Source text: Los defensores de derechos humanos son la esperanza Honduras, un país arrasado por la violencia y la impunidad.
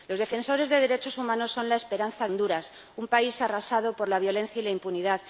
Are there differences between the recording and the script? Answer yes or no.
no